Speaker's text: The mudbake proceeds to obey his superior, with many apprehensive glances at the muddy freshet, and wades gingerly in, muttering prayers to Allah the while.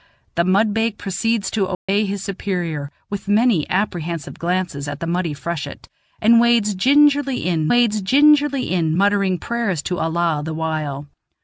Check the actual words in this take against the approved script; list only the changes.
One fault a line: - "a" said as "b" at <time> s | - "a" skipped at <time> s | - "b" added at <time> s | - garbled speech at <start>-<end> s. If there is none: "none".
- "wades gingerly in" added at 7.7 s